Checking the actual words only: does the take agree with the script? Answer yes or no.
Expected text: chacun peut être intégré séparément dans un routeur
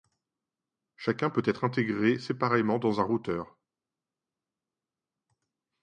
yes